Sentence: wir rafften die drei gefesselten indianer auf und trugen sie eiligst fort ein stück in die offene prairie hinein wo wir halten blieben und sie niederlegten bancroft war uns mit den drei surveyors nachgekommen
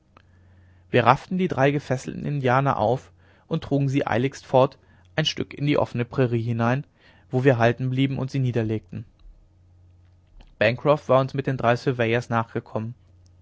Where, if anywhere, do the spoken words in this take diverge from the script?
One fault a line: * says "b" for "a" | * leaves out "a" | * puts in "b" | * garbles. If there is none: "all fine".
all fine